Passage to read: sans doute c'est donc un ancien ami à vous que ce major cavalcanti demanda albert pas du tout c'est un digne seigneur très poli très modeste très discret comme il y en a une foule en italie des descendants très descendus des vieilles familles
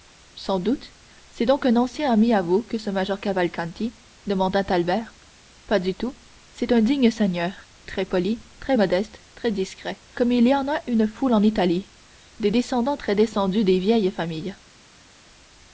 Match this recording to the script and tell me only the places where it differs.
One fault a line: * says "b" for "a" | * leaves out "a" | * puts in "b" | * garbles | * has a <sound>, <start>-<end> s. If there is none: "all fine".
all fine